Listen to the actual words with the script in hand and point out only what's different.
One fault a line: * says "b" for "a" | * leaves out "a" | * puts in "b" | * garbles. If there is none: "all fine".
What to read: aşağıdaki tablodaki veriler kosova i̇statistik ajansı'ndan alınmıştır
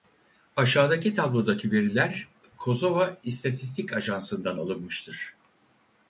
all fine